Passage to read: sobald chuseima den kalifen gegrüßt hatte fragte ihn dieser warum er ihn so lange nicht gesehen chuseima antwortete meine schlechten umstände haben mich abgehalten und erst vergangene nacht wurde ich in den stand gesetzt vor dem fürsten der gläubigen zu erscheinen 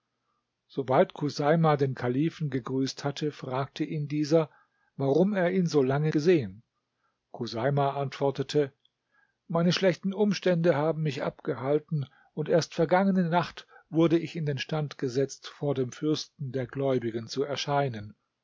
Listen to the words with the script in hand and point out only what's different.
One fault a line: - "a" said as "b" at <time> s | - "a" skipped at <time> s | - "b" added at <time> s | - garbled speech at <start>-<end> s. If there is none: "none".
- "nicht" skipped at 6.1 s